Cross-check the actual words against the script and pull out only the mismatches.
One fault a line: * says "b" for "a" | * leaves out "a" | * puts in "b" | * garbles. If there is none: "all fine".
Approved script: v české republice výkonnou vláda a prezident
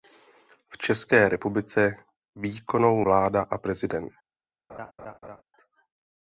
all fine